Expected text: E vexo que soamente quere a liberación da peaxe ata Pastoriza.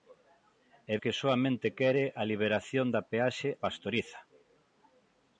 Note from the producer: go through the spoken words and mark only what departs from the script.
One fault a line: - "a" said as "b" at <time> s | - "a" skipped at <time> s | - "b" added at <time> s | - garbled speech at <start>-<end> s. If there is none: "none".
- "vexo" skipped at 0.9 s
- "ata" skipped at 3.5 s